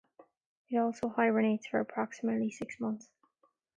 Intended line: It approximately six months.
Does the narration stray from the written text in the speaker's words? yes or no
yes